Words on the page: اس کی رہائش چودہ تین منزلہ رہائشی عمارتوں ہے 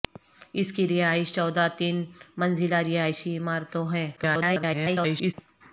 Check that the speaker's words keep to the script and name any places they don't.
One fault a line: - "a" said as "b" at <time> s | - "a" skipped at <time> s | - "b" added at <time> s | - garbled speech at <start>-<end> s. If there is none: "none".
- garbled speech at 4.2-5.3 s